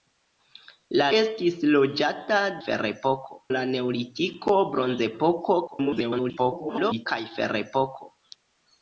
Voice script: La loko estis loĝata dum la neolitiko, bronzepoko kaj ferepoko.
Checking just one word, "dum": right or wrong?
wrong